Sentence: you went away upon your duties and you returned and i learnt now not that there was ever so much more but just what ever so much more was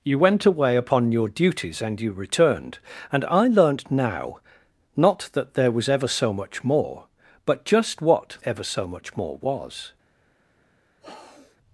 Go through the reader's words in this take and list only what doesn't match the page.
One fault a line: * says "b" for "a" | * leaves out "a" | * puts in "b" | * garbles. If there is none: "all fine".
all fine